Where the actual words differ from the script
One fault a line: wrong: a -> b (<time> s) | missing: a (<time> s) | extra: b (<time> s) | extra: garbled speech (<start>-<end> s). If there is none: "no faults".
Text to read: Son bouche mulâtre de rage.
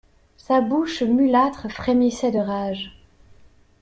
wrong: Son -> Sa (0.3 s)
extra: frémissait (1.7 s)